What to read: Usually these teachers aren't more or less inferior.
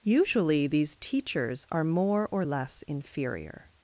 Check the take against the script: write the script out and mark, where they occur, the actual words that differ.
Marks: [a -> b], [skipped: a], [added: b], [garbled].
Usually these teachers [aren't -> are] more or less inferior.